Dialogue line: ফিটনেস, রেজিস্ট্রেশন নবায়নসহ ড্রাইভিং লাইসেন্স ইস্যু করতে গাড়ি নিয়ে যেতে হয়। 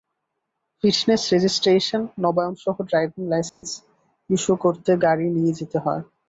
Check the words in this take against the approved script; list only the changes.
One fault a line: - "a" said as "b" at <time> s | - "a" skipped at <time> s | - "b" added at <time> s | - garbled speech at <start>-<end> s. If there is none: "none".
none